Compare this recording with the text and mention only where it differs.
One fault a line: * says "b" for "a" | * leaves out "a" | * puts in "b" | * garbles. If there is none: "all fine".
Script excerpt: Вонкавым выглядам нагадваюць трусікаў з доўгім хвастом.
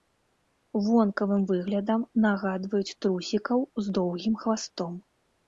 all fine